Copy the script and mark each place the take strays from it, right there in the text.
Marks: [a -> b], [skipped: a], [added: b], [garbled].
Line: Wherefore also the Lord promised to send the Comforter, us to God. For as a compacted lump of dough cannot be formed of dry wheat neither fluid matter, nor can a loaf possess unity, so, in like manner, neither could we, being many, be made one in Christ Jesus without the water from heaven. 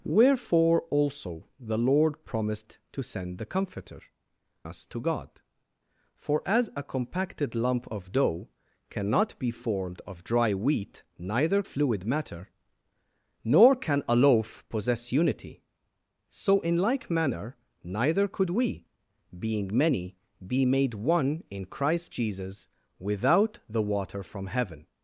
Wherefore also the Lord promised to send the Comforter, us to God. For as a compacted lump of dough cannot be formed of dry wheat neither fluid matter, nor can a loaf possess unity, so, in like manner, neither could we, being many, be made one in Christ Jesus without the water from heaven.